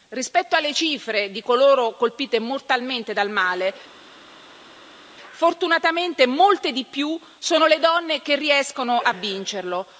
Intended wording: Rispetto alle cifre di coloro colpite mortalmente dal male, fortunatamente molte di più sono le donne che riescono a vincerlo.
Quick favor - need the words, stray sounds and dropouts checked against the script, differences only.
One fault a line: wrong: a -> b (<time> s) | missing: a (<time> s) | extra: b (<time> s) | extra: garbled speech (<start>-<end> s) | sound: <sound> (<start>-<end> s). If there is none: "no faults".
no faults